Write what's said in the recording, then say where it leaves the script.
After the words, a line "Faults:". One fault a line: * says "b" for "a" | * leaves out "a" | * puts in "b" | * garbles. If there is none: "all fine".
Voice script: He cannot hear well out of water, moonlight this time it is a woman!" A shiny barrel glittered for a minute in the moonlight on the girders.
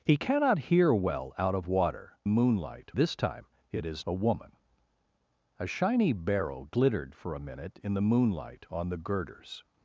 He cannot hear well out of water, moonlight this time it is a woman!" A shiny barrel glittered for a minute in the moonlight on the girders.
Faults:
all fine